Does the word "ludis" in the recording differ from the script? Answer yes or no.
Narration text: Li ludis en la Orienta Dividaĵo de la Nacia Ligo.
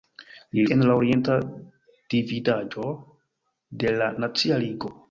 yes